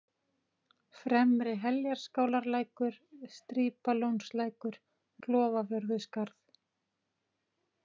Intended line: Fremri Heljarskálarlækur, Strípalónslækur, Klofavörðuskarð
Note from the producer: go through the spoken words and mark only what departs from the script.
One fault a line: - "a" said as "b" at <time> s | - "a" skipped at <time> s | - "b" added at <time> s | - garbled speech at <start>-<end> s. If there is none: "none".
none